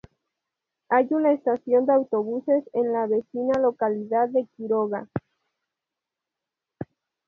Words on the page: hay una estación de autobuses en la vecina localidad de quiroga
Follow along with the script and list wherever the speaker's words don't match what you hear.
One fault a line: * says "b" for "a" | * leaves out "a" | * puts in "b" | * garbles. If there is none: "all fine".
all fine